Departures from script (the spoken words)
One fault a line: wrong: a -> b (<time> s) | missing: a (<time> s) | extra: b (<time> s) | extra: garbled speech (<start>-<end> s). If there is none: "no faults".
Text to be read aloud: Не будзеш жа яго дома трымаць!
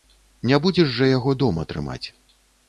no faults